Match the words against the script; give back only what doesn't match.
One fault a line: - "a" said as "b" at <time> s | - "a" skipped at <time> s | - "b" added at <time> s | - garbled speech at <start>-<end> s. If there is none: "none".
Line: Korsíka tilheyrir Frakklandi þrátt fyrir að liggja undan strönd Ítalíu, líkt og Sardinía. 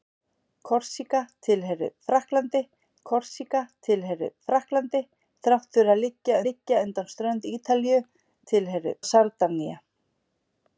- "korsíka tilheyrir Frakklandi" added at 3.1 s
- "liggja" added at 6.5 s
- "líkt" said as "tilheyrir" at 8.5 s